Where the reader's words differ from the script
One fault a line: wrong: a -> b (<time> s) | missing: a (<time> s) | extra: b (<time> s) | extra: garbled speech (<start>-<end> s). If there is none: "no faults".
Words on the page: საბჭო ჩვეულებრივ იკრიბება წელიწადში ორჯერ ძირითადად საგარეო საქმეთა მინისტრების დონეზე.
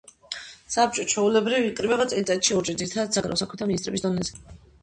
no faults